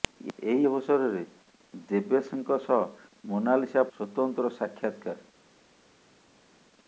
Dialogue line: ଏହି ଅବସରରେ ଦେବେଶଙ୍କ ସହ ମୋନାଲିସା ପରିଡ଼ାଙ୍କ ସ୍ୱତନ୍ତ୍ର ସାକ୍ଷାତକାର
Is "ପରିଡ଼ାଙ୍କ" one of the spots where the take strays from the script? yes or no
yes